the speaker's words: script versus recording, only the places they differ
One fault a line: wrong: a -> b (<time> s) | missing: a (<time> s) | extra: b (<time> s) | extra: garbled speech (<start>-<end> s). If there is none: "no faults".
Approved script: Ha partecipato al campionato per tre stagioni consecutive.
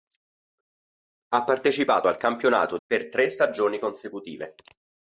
no faults